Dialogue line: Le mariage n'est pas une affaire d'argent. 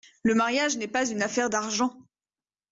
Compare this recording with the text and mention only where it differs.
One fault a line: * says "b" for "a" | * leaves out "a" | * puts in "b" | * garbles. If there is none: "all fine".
all fine